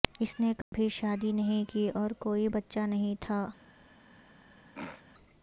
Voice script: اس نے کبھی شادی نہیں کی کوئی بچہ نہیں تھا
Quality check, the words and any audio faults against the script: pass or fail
fail